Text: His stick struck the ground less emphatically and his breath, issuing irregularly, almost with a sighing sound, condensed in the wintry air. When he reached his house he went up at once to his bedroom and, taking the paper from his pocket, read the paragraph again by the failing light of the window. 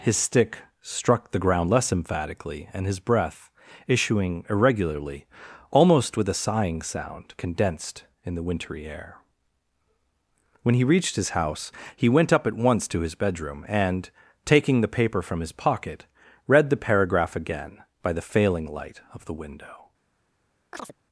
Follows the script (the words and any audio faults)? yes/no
no